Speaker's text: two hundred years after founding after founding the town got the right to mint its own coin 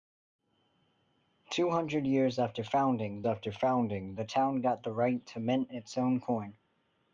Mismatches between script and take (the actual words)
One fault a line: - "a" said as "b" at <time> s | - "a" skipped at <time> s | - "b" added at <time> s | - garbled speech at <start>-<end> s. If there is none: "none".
none